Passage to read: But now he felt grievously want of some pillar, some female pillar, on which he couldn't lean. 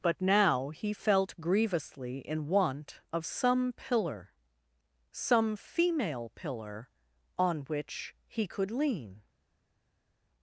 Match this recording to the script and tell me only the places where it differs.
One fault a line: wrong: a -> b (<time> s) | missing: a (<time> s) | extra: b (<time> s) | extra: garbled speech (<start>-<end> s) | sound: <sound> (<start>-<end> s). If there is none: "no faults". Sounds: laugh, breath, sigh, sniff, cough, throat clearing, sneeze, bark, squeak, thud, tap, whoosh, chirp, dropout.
extra: in (2.2 s)
wrong: couldn't -> could (8.5 s)